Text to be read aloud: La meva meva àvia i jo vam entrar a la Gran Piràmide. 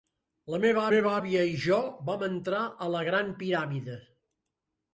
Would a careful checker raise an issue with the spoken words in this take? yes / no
no